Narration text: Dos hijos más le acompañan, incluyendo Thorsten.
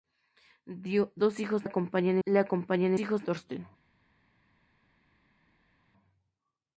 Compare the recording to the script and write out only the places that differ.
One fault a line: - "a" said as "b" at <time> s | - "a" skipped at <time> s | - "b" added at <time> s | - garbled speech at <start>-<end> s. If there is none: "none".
- "más" said as "acompañan" at 1.6 s
- "incluyendo" said as "hijos" at 3.0 s